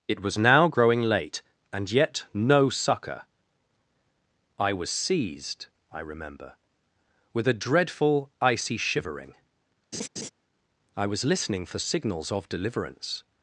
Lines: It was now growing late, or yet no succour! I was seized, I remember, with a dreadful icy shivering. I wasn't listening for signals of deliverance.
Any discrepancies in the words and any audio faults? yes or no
yes